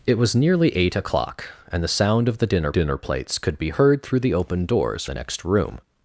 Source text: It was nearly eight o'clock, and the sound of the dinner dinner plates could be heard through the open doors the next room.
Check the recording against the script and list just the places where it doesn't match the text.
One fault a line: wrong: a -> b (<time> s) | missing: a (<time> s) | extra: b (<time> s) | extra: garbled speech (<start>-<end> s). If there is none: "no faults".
no faults